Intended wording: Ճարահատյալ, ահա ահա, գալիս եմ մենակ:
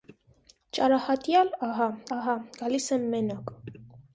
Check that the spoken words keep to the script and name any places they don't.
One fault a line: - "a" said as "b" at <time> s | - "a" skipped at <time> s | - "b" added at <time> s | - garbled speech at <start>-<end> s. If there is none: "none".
none